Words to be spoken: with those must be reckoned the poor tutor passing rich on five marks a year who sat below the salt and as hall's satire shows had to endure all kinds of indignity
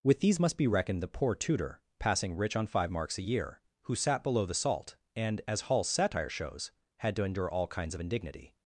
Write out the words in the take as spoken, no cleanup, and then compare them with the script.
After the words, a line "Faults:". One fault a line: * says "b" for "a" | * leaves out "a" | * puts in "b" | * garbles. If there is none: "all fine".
with these must be reckoned the poor tutor passing rich on five marks a year who sat below the salt and as hall's satire shows had to endure all kinds of indignity
Faults:
* says "these" for "those"